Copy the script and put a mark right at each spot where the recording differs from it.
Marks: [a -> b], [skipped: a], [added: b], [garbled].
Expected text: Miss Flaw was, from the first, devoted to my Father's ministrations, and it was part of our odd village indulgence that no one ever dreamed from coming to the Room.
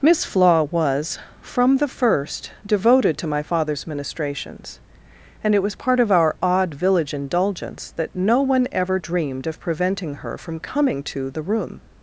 Miss Flaw was, from the first, devoted to my Father's ministrations, and it was part of our odd village indulgence that no one ever dreamed [added: of preventing her] from coming to the Room.